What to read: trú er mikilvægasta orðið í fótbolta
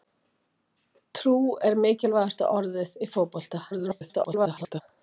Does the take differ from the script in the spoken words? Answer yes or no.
yes